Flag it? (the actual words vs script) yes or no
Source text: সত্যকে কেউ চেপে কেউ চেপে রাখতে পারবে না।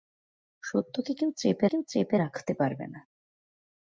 no